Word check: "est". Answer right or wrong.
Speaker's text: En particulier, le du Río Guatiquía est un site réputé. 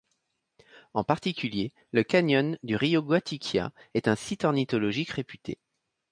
right